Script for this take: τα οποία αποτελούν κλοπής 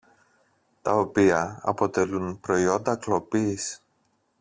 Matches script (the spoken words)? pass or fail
fail